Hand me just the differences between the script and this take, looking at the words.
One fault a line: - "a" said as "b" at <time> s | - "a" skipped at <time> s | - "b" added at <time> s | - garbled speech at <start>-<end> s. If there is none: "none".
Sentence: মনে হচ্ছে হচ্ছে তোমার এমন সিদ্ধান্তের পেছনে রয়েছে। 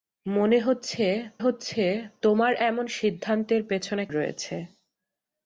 none